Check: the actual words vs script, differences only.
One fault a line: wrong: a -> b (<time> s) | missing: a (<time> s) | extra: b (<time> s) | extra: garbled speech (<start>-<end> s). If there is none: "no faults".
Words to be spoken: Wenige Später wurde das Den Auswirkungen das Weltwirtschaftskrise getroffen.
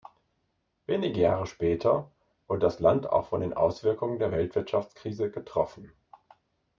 extra: Jahre (1.2 s)
extra: Land auch von (2.8 s)
wrong: das -> der (4.2 s)